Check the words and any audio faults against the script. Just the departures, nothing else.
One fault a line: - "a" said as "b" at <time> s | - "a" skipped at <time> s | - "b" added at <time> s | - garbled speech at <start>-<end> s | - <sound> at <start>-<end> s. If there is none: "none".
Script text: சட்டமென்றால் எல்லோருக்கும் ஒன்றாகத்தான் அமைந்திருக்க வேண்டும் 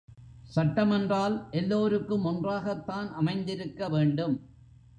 none